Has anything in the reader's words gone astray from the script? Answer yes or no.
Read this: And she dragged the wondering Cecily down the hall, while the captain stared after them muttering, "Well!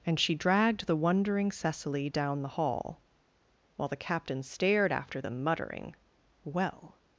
no